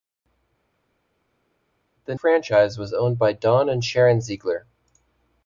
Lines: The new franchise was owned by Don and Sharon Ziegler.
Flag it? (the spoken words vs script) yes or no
yes